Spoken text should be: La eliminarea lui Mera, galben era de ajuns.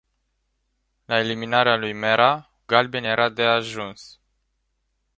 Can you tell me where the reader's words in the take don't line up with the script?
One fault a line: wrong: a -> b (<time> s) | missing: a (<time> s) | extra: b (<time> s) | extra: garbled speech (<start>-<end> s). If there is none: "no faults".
no faults